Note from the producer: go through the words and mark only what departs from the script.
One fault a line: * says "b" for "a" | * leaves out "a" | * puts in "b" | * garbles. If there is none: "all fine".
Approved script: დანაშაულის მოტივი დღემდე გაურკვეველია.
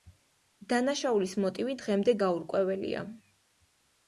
all fine